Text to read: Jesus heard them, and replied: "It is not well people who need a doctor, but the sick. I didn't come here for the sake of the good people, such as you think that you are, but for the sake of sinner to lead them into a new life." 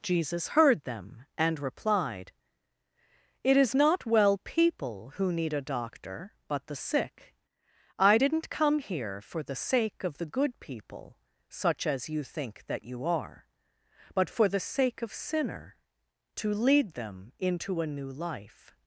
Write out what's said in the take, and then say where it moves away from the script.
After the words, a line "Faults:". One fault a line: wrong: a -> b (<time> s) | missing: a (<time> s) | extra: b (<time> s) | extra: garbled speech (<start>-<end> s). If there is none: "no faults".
Jesus heard them, and replied: "It is not well people who need a doctor, but the sick. I didn't come here for the sake of the good people, such as you think that you are, but for the sake of sinner to lead them into a new life."
Faults:
no faults